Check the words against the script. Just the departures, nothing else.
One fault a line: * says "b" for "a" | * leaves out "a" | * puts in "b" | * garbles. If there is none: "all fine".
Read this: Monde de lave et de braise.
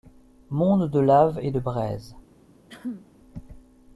all fine